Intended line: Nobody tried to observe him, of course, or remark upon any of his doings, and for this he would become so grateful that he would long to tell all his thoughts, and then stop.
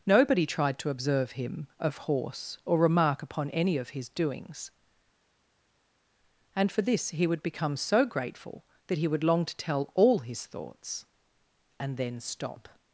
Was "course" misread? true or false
true